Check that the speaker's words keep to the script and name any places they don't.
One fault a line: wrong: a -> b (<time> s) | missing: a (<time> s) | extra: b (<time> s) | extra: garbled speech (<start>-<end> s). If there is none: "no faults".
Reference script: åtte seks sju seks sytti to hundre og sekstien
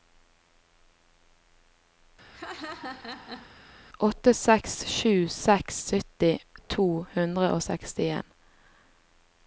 no faults